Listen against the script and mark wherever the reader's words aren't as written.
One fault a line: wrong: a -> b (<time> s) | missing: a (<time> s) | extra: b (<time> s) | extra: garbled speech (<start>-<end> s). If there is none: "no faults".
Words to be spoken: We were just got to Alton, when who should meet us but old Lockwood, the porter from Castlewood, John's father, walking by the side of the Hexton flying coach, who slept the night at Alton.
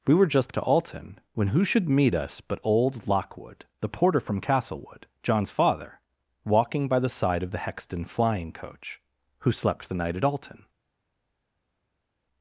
missing: got (0.6 s)